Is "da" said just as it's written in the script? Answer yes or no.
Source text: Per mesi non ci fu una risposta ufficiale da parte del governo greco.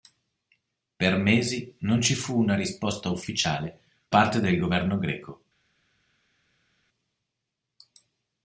no